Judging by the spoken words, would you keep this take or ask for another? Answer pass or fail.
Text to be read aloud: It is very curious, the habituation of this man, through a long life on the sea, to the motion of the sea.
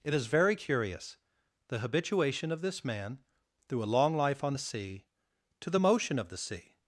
pass